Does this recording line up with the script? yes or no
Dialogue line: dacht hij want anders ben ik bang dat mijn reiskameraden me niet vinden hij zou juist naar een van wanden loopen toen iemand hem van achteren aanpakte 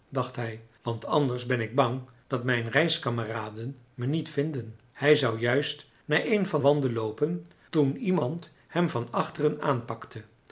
yes